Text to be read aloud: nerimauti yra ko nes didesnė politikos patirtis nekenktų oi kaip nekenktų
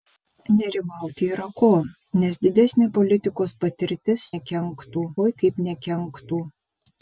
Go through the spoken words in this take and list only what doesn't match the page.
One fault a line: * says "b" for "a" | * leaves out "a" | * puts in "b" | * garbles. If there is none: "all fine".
all fine